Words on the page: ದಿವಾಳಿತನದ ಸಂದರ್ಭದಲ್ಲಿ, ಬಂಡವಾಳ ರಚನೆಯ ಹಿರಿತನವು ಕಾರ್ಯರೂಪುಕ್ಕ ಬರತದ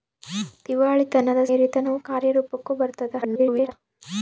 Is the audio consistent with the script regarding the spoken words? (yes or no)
no